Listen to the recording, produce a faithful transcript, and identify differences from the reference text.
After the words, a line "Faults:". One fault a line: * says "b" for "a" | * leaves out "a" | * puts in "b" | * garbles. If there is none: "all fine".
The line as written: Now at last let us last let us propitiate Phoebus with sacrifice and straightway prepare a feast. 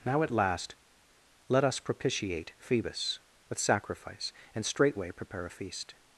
Now at last let us propitiate Phoebus with sacrifice and straightway prepare a feast.
Faults:
* leaves out "last let us"